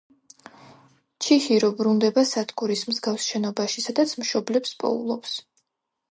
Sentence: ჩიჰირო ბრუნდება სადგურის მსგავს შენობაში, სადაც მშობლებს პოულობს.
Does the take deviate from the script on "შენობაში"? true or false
false